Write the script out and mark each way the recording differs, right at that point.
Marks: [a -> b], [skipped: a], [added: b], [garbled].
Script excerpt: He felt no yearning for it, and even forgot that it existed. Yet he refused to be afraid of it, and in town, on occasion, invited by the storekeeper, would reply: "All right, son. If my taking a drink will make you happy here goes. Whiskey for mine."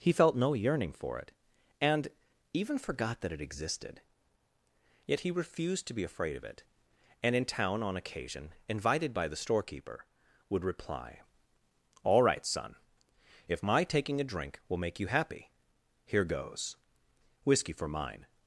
He felt no yearning for it, and even forgot that it existed. Yet he refused to be afraid of it, and in town, on occasion, invited by the storekeeper, would reply: "All right, son. If my taking a drink will make you happy here goes. Whiskey for mine."